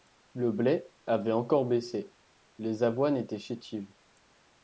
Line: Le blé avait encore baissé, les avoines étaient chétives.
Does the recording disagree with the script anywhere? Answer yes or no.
no